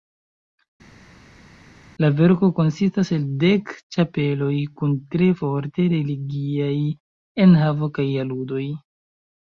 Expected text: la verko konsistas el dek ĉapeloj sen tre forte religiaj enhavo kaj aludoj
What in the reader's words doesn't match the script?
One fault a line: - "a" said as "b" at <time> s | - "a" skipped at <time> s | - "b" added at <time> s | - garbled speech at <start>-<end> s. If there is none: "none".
- "sen" said as "kun" at 4.8 s